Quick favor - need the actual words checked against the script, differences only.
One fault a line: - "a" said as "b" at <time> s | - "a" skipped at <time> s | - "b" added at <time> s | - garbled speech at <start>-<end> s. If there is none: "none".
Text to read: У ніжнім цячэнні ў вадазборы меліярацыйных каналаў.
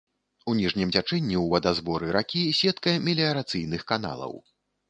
- "ракі сетка" added at 2.2 s